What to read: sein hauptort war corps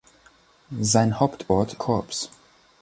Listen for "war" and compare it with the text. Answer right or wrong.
wrong